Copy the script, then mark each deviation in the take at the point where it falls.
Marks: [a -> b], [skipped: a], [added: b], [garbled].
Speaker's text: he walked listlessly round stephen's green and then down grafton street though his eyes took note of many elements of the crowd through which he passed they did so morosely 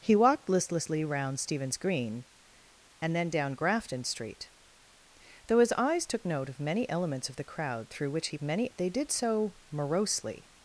he walked listlessly round stephen's green and then down grafton street though his eyes took note of many elements of the crowd through which he [passed -> many] they did so morosely